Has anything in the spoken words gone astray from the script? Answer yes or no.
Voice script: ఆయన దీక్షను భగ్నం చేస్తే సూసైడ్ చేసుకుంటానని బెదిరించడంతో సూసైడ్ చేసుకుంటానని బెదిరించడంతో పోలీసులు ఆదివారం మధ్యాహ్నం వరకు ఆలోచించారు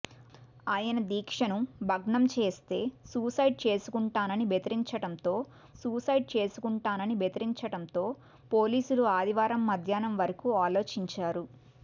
no